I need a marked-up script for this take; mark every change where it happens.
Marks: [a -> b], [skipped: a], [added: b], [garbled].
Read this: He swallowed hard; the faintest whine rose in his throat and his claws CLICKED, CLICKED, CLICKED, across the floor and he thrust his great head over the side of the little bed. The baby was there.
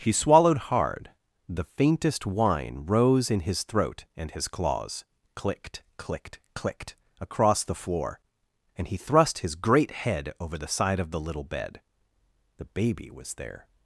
He swallowed hard; the faintest whine rose in his throat and his claws CLICKED, CLICKED, CLICKED, across the floor and he thrust his great head over the side of the little bed. The baby was there.